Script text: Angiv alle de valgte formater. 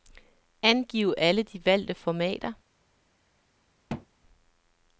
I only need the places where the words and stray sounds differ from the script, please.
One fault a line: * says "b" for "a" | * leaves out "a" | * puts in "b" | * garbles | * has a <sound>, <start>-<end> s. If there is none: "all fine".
* has a thud, 3.9-4.1 s